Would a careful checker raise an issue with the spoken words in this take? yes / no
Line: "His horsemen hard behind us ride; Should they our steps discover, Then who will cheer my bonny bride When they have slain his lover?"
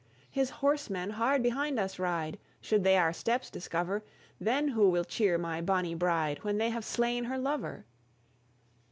yes